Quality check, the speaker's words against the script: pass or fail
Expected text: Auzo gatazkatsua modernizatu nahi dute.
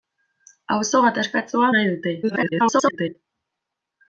fail